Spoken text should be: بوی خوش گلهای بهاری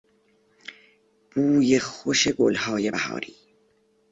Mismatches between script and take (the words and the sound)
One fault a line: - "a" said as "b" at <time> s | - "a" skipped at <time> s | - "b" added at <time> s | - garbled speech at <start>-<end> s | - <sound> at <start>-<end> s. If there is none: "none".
none